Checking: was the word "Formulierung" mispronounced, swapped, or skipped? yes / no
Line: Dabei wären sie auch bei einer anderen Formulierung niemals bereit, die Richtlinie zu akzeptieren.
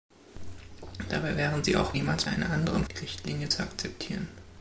yes